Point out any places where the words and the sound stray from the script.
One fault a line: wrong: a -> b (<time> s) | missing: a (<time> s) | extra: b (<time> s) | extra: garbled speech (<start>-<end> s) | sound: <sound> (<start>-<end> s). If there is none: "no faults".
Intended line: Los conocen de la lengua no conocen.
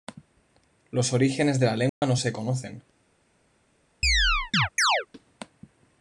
wrong: conocen -> orígenes (1.1 s)
sound: dropout (1.9-2.0 s)
extra: se (2.1 s)
sound: chirp (4.0-5.1 s)